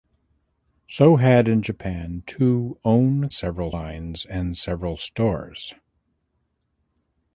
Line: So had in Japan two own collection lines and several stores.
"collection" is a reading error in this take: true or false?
true